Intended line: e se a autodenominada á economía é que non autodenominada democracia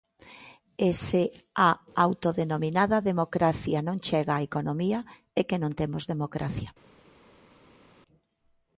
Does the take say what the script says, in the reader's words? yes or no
no